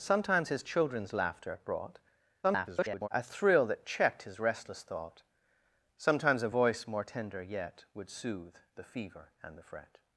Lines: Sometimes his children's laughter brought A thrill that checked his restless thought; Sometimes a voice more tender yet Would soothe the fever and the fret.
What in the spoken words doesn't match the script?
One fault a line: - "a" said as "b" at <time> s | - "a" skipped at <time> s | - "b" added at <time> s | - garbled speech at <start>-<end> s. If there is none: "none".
- garbled speech at 2.4-3.1 s